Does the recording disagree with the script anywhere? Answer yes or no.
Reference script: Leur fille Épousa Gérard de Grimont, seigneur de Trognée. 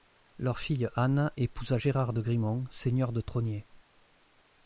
yes